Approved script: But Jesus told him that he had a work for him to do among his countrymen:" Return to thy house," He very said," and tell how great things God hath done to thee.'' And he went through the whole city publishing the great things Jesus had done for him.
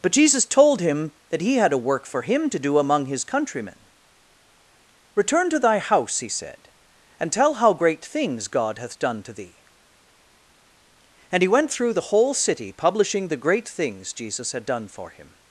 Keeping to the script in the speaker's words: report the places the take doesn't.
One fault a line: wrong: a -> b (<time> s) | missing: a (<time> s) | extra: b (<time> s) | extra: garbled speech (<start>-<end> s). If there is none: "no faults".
missing: very (6.3 s)